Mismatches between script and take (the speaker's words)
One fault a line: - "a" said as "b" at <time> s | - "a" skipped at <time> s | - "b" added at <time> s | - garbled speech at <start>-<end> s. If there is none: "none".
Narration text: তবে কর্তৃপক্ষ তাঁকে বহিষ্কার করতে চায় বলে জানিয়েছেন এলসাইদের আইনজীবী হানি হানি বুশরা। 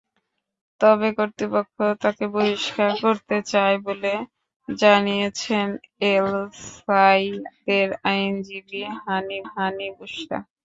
none